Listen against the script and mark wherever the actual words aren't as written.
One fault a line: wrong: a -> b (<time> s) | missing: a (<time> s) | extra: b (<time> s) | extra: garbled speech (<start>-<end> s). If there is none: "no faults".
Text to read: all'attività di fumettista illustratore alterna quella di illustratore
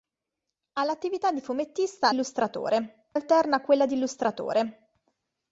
no faults